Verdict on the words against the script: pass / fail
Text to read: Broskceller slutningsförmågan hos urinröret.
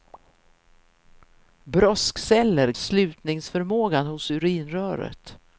pass